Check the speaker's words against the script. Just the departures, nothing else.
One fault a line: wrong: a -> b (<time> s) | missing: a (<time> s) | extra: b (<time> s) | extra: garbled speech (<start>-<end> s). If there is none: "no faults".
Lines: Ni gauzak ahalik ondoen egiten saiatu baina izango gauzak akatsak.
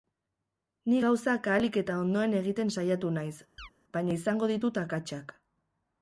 extra: eta (1.8 s)
extra: naiz (3.2 s)
wrong: gauzak -> ditut (4.5 s)